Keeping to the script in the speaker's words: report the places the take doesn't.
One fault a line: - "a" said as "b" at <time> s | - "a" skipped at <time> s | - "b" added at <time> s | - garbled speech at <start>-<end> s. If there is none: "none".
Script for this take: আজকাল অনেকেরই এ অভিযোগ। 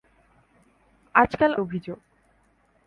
- "অনেকেরই এ" skipped at 1.5 s